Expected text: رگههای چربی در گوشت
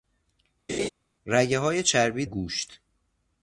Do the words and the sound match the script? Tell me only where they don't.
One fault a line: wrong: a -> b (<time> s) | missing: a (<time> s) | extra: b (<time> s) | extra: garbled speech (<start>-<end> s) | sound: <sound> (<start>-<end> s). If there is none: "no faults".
sound: laugh (0.7-0.9 s)
missing: در (2.3 s)